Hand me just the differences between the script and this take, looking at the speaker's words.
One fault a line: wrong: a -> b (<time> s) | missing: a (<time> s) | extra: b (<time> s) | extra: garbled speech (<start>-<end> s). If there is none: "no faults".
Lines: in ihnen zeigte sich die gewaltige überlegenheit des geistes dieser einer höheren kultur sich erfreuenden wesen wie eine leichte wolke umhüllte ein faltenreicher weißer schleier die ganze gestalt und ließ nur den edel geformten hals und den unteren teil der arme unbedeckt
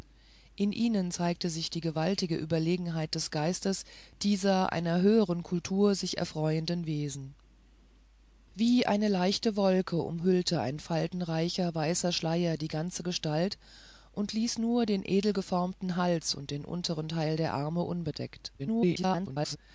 extra: garbled speech (18.6-19.6 s)